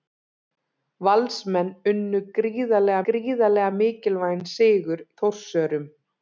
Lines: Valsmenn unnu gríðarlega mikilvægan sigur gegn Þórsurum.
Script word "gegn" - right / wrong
wrong